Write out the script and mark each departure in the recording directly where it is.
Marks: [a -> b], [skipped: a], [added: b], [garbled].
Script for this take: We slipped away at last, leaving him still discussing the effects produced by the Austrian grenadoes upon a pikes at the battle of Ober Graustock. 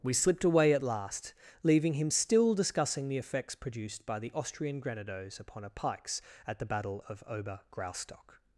We slipped away at last, leaving him still discussing the effects produced by the Austrian grenadoes upon a pikes at the battle of Ober Graustock.